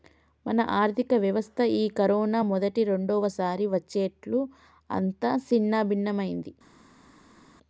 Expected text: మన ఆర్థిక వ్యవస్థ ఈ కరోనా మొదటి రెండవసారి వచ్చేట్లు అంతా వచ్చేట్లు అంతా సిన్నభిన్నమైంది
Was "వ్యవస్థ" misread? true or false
false